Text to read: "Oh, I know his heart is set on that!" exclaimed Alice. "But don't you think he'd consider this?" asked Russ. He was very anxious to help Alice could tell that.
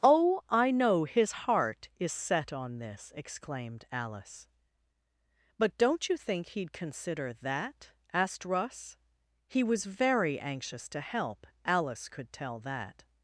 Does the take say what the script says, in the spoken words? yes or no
no